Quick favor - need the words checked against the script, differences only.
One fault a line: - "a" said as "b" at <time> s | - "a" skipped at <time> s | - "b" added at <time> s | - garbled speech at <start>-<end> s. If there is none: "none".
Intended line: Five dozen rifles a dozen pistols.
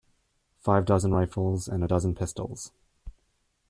- "and" added at 1.7 s